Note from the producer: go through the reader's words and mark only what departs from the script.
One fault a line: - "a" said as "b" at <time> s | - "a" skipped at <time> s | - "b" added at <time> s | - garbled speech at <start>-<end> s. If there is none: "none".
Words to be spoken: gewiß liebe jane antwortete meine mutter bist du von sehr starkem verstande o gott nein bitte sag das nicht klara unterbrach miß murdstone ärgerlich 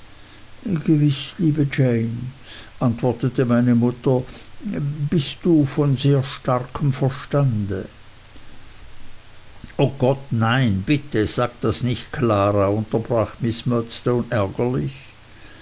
none